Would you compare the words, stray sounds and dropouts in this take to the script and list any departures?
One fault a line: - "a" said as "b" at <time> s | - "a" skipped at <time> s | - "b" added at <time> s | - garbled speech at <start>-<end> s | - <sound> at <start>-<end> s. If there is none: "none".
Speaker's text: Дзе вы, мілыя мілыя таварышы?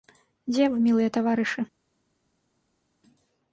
- "мілыя" skipped at 1.1 s